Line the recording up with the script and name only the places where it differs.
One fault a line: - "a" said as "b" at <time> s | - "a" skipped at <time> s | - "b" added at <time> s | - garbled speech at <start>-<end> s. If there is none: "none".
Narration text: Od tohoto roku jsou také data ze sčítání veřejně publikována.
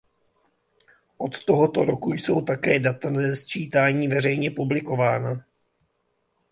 none